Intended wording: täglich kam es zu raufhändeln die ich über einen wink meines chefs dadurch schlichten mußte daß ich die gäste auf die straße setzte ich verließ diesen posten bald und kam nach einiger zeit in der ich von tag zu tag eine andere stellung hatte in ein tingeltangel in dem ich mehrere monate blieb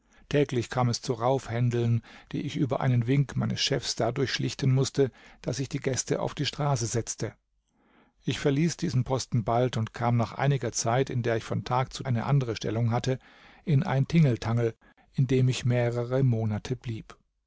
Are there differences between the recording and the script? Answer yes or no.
yes